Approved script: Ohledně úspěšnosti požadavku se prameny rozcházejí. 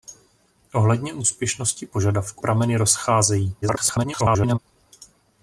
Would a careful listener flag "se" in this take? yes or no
yes